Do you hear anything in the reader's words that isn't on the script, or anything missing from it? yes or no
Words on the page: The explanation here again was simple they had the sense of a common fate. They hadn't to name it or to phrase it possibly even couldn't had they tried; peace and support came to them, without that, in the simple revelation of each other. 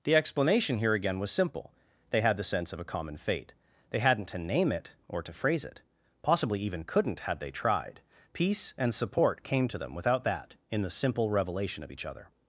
no